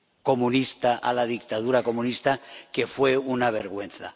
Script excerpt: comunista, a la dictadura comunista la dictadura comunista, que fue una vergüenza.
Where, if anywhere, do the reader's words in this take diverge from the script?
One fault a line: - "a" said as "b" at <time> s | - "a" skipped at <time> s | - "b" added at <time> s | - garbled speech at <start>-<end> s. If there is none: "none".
- "la dictadura comunista" skipped at 2.4 s